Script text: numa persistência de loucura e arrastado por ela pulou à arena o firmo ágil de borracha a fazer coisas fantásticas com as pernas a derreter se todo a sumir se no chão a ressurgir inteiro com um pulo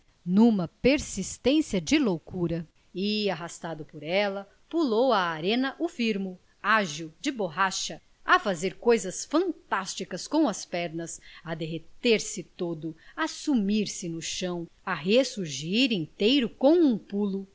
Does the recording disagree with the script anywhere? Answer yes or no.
no